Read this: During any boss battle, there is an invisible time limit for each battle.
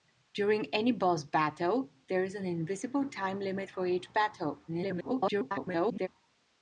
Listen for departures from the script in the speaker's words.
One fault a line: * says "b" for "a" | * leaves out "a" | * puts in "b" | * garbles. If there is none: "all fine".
* garbles